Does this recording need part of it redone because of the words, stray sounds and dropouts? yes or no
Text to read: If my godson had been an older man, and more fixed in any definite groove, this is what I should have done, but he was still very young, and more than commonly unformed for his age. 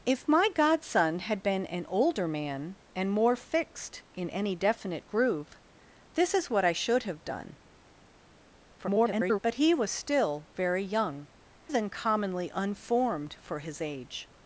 yes